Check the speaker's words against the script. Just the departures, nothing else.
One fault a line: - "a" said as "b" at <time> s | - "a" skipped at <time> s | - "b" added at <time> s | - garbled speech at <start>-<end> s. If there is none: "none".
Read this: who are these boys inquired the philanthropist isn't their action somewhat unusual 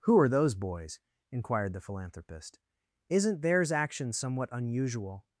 - "these" said as "those" at 0.3 s
- "their" said as "theirs" at 3.4 s